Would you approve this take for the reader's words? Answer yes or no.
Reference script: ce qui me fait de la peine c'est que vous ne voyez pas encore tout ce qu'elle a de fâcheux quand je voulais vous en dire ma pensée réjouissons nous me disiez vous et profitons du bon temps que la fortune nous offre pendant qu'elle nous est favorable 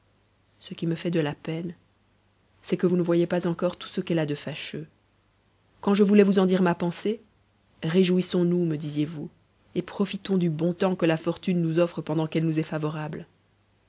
yes